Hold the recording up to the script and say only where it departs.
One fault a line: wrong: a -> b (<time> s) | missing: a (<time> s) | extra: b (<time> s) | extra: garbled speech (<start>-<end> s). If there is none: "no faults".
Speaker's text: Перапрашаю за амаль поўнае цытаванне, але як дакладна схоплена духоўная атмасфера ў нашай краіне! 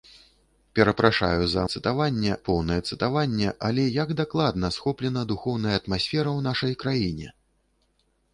wrong: амаль -> цытаванне (1.7 s)